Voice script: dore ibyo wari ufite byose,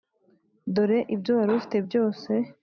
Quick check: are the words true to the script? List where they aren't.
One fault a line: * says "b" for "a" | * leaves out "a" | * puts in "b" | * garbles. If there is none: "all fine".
all fine